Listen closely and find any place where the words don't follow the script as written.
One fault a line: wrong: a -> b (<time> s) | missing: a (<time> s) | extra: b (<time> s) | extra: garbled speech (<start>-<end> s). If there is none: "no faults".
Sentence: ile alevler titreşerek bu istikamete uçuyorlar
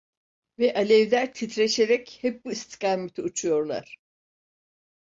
wrong: ile -> ve (0.6 s)
extra: hep (2.2 s)